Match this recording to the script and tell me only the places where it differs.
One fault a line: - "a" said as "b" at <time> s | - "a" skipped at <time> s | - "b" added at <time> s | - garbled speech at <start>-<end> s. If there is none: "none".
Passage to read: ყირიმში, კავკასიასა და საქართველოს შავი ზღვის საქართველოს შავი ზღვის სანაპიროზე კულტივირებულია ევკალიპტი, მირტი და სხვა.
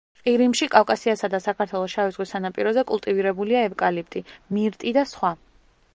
- "საქართველოს შავი ზღვის" skipped at 2.3 s